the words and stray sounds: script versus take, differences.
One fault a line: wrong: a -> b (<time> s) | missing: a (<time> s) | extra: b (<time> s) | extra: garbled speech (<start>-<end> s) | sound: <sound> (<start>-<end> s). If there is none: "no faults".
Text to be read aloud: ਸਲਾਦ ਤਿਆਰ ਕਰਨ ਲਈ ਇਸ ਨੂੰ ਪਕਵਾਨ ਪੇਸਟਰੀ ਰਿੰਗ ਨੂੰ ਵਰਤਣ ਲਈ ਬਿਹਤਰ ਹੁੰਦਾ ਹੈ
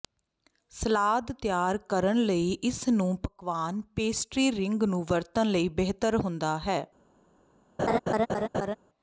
sound: laugh (7.8-8.8 s)